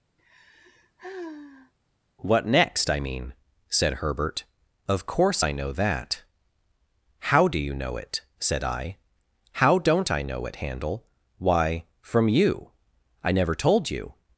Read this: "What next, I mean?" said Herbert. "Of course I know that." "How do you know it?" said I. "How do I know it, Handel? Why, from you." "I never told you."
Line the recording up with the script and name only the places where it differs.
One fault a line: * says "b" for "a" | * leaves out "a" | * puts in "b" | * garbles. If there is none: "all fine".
* says "don't" for "do"